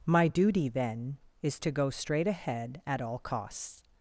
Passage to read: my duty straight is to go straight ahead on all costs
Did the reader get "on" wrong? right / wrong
wrong